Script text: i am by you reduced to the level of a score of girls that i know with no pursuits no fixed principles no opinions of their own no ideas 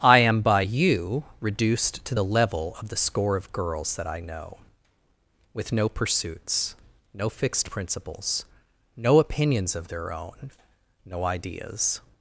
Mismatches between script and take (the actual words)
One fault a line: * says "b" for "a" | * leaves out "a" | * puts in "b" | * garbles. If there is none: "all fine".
* says "the" for "a"